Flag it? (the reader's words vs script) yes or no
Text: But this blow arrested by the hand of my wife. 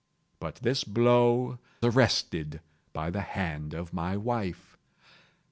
no